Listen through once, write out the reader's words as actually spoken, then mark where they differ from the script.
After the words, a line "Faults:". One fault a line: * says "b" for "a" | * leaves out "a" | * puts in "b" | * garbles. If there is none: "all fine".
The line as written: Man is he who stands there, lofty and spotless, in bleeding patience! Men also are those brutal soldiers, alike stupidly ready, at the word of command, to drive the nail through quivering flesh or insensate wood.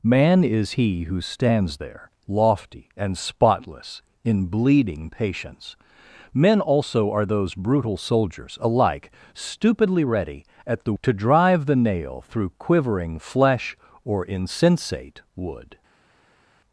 Man is he who stands there, lofty and spotless, in bleeding patience! Men also are those brutal soldiers, alike stupidly ready, at the to drive the nail through quivering flesh or insensate wood.
Faults:
* leaves out "word of command"